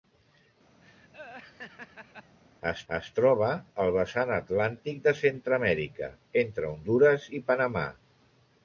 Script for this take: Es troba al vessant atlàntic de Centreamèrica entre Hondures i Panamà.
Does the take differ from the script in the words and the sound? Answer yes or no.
yes